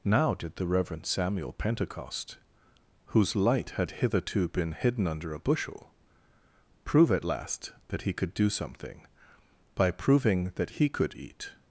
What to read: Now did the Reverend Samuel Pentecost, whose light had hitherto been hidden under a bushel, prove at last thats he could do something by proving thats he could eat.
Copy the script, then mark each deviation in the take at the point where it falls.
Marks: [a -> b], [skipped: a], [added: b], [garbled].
Now did the Reverend Samuel Pentecost, whose light had hitherto been hidden under a bushel, prove at last [thats -> that] he could do something by proving [thats -> that] he could eat.